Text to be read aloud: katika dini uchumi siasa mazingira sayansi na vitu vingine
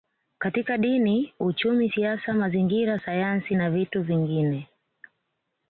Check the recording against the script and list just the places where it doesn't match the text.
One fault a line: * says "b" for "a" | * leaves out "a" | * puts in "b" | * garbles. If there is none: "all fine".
all fine